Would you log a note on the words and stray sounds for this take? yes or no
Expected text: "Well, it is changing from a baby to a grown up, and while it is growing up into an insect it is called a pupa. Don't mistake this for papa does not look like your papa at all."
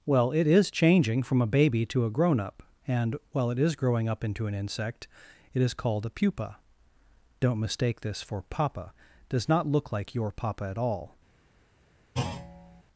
yes